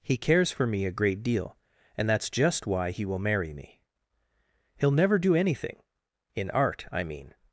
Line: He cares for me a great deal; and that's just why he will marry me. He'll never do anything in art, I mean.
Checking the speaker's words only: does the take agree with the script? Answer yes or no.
yes